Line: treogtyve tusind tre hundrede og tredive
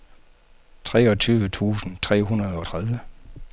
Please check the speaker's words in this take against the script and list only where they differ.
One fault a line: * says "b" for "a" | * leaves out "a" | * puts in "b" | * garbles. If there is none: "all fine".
all fine